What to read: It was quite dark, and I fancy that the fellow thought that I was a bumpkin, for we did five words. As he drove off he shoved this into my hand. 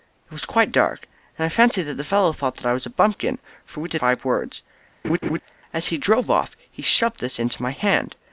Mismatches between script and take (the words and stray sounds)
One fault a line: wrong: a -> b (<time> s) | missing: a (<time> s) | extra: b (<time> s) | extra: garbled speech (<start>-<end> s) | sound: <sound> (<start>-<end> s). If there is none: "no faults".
sound: laugh (5.0-5.4 s)